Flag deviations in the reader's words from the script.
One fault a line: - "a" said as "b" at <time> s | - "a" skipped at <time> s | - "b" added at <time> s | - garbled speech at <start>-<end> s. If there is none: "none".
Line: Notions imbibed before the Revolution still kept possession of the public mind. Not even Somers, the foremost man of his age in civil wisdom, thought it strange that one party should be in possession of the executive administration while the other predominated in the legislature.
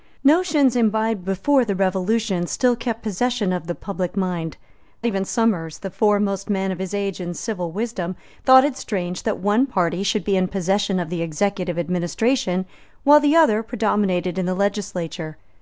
- "Not" skipped at 4.6 s